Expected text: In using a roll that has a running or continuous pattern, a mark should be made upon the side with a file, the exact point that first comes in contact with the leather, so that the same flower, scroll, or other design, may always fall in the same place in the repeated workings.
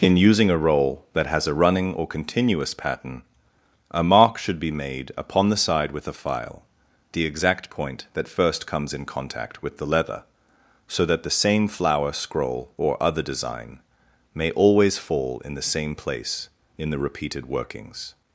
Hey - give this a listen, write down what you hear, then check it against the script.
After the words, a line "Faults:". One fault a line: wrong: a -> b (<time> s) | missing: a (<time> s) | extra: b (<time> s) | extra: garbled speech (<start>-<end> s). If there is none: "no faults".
In using a roll that has a running or continuous pattern, a mark should be made upon the side with a file, the exact point that first comes in contact with the leather, so that the same flower, scroll, or other design, may always fall in the same place in the repeated workings.
Faults:
no faults